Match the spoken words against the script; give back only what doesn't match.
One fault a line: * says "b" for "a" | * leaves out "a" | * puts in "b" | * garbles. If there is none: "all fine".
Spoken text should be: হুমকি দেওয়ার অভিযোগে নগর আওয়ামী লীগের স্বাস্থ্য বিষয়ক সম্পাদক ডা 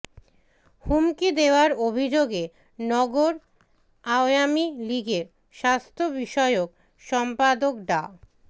all fine